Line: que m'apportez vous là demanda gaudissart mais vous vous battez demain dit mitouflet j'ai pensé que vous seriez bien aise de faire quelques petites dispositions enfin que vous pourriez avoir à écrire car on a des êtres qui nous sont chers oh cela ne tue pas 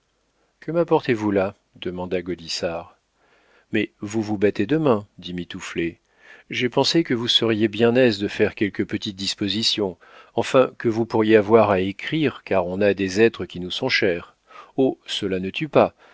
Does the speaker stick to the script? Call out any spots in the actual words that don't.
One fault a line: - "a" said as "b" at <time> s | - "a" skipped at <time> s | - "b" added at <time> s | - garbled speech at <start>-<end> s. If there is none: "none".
none